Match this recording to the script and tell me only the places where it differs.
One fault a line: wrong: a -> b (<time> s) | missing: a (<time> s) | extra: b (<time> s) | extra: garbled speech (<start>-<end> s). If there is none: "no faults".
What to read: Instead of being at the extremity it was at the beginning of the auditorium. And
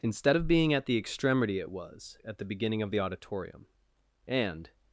no faults